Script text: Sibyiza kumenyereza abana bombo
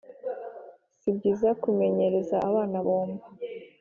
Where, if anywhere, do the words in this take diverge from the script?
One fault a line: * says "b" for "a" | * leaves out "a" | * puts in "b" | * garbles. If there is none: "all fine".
all fine